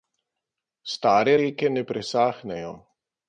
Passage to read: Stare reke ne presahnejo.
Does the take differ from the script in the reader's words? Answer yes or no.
no